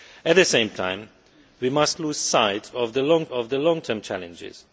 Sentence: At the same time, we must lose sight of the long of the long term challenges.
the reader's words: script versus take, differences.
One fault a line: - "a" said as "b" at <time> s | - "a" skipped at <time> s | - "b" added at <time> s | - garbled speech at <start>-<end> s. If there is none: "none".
none